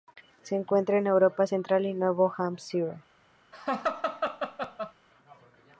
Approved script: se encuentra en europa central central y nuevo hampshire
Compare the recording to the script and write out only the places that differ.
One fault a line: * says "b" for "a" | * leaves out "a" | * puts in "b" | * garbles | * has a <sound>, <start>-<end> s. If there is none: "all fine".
* leaves out "central"
* has a laugh, 3.5-4.9 s